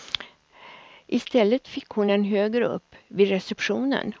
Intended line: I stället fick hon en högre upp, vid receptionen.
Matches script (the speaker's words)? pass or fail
pass